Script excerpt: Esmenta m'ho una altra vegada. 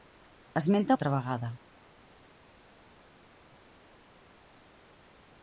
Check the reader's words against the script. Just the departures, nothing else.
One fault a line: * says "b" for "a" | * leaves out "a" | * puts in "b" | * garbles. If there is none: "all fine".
* leaves out "m'ho una"